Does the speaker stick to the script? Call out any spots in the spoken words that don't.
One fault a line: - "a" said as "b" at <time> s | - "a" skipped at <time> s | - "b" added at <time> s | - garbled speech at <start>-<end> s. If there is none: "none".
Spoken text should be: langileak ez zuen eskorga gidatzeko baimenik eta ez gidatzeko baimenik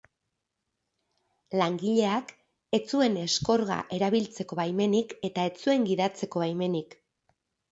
- "gidatzeko" said as "erabiltzeko" at 4.0 s
- "zuen" added at 5.6 s